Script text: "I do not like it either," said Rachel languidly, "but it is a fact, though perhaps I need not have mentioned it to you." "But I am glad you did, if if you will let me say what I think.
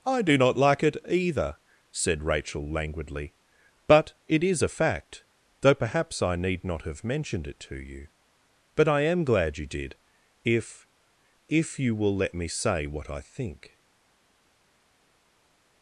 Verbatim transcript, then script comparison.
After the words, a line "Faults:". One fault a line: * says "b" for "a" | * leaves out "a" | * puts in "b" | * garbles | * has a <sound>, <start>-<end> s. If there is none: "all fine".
"I do not like it either," said Rachel languidly, "but it is a fact, though perhaps I need not have mentioned it to you." "But I am glad you did, if if you will let me say what I think.
Faults:
all fine